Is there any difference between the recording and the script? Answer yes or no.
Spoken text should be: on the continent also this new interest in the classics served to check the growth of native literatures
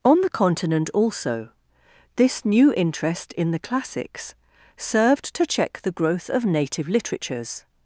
no